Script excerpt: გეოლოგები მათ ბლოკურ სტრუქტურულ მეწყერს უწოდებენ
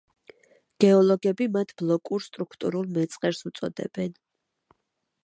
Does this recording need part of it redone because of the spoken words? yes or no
no